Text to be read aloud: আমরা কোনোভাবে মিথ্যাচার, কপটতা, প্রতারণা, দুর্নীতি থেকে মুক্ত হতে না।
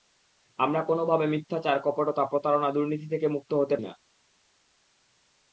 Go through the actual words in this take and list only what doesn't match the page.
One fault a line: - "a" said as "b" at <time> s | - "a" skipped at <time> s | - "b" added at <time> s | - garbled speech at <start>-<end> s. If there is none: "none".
none